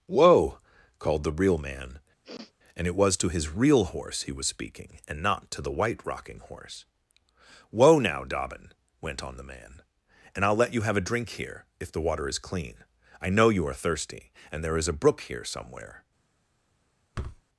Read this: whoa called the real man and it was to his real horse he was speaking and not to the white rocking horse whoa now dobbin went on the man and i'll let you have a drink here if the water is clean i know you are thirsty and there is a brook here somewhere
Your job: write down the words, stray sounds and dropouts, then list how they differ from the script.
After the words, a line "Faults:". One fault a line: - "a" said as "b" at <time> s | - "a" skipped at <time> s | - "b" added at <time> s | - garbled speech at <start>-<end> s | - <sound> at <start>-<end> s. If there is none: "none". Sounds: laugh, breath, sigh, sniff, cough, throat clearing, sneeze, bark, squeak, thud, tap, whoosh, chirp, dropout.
whoa called the real man and it was to his real horse he was speaking and not to the white rocking horse whoa now dobbin went on the man and i'll let you have a drink here if the water is clean i know you are thirsty and there is a brook here somewhere
Faults:
- sniff at 2.2-2.5 s
- thud at 17.1-17.4 s